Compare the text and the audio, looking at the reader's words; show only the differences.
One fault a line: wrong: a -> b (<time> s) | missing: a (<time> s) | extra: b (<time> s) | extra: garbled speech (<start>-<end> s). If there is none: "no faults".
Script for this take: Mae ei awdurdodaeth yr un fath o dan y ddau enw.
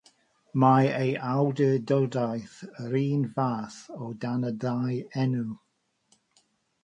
no faults